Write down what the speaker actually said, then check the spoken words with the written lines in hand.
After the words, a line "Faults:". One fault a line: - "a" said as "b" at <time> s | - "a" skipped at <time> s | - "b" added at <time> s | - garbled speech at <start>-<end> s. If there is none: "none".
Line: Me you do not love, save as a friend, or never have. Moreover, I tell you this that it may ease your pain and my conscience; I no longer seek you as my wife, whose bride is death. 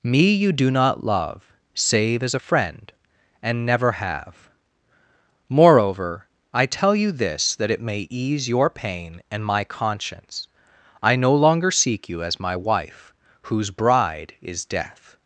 Me you do not love, save as a friend, and never have. Moreover, I tell you this that it may ease your pain and my conscience; I no longer seek you as my wife, whose bride is death.
Faults:
- "or" said as "and" at 3.4 s